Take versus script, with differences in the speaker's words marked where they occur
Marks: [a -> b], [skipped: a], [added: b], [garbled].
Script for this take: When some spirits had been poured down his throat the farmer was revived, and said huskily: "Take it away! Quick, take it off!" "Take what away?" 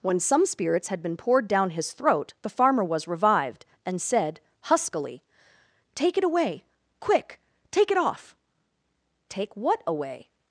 When some spirits had been poured down his throat the farmer was revived, and said huskily: "Take it away! Quick, take it off!" "Take what away?"